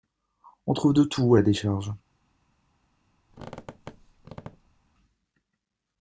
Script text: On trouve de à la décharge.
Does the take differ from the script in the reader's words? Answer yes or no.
yes